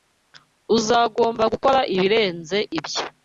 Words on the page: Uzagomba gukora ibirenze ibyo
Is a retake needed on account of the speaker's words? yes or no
no